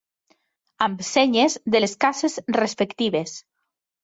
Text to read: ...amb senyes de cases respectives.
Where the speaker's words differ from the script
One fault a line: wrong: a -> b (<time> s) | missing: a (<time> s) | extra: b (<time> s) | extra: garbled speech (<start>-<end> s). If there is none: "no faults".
extra: les (1.8 s)